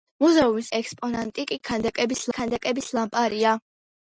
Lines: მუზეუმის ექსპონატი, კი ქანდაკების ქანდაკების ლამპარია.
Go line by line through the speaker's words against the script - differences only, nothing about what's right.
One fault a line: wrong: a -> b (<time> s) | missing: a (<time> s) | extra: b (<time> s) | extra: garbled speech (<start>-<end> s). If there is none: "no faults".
no faults